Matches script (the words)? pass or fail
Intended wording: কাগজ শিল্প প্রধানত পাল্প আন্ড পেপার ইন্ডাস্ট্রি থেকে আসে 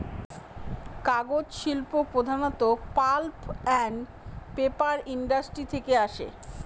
pass